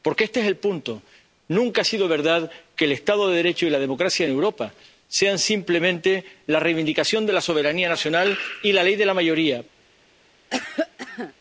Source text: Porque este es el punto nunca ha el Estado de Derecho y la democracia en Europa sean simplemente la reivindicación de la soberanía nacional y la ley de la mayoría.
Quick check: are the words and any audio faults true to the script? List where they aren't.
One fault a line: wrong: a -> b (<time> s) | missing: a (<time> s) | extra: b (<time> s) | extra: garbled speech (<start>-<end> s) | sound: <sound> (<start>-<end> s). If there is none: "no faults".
extra: sido verdad que (1.9 s)
sound: cough (10.5-11.3 s)